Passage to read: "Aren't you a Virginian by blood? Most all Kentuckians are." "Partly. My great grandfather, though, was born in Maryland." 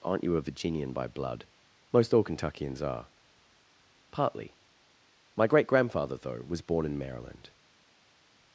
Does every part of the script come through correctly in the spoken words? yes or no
yes